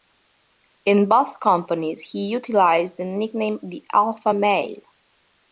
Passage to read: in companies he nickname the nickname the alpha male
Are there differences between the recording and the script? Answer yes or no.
yes